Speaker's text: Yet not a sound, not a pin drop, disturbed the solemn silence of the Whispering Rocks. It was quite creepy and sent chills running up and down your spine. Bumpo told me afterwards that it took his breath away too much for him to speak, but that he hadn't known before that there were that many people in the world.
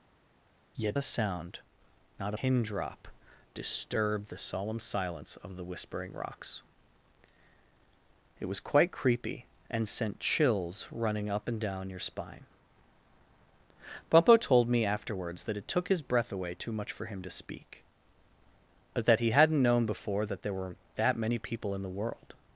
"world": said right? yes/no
yes